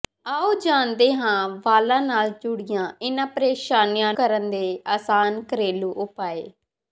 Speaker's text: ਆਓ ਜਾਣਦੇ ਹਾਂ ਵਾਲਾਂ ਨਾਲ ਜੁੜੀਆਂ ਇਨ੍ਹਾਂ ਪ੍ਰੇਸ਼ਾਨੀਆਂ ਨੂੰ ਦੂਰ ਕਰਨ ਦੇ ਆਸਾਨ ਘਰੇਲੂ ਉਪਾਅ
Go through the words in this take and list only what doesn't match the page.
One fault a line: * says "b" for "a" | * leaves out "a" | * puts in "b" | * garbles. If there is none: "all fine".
* leaves out "ਨੂੰ ਦੂਰ"